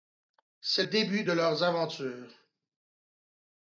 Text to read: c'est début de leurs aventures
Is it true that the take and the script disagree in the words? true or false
false